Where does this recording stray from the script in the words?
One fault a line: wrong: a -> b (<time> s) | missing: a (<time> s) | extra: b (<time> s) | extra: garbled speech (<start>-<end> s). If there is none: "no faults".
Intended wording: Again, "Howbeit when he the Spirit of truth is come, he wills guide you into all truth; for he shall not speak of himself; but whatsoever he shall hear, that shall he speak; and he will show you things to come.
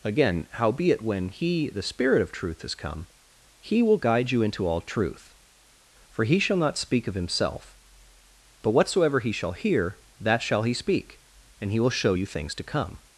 wrong: wills -> will (3.8 s)